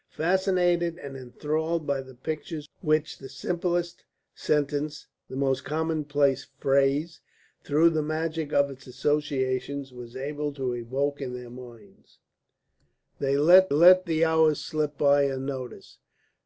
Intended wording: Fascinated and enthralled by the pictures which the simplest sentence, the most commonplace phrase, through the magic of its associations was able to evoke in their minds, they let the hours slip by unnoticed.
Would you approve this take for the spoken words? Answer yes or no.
no